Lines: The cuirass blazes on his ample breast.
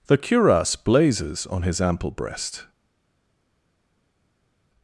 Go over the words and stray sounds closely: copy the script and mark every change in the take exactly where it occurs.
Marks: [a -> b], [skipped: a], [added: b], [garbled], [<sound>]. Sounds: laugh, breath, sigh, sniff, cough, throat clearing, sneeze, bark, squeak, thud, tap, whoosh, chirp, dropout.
The cuirass blazes on his ample breast.